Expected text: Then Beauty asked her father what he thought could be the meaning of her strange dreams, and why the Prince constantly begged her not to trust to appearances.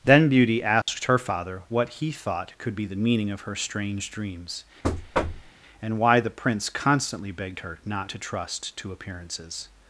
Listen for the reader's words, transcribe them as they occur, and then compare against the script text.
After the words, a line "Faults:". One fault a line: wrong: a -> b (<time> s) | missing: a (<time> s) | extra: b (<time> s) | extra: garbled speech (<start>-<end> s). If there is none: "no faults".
Then Beauty asked her father what he thought could be the meaning of her strange dreams, and why the Prince constantly begged her not to trust to appearances.
Faults:
no faults